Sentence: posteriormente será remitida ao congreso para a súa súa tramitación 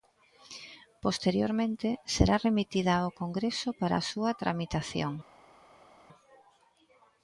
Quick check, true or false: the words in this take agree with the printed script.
false